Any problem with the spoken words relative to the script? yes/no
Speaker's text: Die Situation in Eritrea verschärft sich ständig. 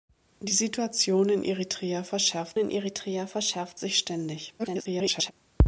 yes